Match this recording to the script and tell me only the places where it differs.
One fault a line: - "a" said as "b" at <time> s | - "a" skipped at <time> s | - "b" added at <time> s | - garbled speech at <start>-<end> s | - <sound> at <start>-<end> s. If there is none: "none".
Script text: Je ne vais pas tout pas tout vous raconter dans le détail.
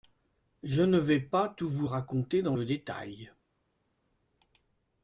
- "pas tout" skipped at 1.7 s